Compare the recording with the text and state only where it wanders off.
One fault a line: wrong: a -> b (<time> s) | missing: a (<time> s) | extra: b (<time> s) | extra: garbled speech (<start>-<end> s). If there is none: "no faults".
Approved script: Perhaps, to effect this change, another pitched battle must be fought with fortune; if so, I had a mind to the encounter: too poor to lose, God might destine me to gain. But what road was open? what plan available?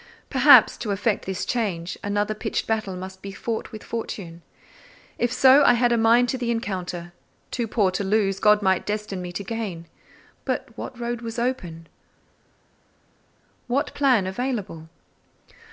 no faults